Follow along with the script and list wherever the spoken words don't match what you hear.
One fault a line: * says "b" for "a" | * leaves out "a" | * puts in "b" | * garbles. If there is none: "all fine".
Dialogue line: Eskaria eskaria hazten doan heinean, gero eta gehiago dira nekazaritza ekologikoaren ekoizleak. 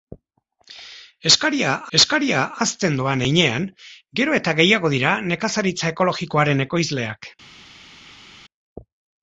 all fine